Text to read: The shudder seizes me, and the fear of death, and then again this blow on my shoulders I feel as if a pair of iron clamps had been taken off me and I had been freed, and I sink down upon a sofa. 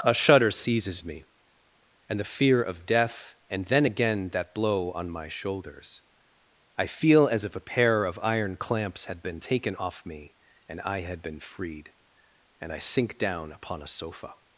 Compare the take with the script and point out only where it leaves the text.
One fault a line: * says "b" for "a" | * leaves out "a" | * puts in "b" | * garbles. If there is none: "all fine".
* says "A" for "The"
* says "that" for "this"